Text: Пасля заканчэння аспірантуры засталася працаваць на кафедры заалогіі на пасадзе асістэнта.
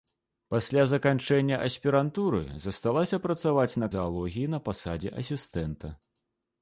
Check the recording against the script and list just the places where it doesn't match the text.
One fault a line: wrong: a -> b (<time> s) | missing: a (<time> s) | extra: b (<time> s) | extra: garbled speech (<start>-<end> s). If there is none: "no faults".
missing: кафедры (3.9 s)